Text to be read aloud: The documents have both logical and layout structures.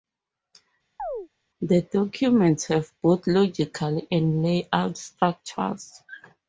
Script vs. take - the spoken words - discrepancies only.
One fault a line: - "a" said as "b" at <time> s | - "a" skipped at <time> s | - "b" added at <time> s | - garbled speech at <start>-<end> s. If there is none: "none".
none